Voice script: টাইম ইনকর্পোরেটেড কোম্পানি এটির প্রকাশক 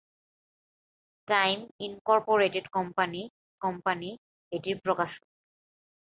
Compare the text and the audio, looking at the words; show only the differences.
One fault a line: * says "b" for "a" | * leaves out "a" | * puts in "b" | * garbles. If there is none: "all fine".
* puts in "কোম্পানি"